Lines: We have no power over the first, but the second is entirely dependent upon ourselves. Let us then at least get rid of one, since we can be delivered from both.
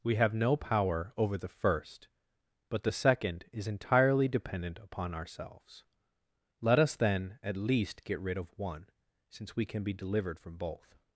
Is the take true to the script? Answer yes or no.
yes